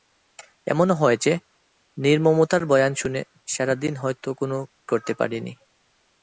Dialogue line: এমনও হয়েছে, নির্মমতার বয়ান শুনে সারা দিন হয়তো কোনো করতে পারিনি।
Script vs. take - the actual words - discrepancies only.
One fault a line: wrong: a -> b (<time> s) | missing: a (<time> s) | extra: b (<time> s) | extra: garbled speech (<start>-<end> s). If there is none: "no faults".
no faults